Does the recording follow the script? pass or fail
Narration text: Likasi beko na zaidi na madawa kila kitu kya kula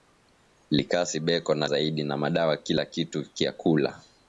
pass